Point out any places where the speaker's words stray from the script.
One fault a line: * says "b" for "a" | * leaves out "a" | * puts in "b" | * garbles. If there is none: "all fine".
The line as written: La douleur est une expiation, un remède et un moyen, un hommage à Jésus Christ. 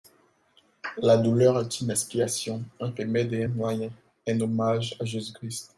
all fine